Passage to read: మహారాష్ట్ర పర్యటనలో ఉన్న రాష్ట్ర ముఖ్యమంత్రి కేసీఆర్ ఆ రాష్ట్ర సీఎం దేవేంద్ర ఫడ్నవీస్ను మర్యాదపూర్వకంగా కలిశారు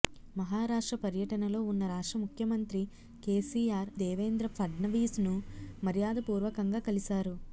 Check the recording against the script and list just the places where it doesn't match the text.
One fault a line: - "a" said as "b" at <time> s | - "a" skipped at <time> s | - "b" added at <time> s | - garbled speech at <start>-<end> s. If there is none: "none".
- "ఆ రాష్ట్ర సీఎం" skipped at 3.9 s